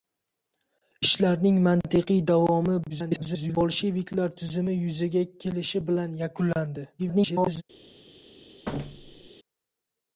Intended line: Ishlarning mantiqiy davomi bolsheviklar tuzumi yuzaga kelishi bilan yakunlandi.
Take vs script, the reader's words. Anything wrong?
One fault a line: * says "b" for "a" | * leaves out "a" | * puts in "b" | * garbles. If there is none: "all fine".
* garbles
* garbles